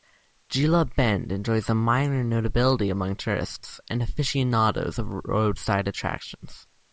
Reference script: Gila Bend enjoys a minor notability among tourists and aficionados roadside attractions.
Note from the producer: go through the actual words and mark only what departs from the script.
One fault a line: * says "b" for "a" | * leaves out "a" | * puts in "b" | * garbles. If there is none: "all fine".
* puts in "of"